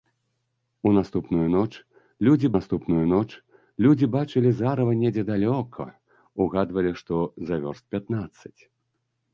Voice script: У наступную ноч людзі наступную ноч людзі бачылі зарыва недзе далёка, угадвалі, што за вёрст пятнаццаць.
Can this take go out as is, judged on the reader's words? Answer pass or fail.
pass